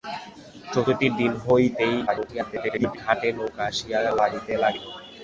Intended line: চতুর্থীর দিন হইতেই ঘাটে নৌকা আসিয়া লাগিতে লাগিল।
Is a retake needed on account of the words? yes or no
yes